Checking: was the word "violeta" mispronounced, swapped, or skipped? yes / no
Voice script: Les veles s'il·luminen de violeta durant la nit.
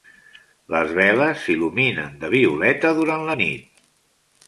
no